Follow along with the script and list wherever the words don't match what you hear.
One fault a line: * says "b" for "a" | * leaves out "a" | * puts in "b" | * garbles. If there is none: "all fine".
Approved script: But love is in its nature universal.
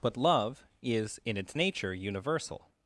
all fine